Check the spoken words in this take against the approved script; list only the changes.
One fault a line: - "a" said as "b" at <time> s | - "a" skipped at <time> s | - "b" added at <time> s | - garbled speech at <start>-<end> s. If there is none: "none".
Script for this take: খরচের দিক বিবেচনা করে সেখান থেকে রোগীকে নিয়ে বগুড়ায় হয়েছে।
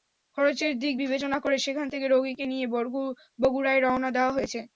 - "রওনা দেওয়া" added at 3.8 s